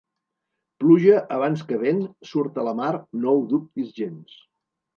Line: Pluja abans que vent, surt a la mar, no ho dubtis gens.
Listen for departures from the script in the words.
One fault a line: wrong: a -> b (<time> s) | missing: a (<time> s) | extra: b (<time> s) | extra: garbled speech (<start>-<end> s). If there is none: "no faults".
no faults